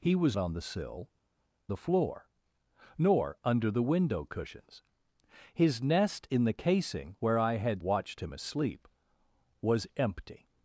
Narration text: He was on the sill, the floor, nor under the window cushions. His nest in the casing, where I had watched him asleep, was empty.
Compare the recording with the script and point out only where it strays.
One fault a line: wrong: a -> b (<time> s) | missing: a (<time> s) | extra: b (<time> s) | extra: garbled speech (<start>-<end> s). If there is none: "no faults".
no faults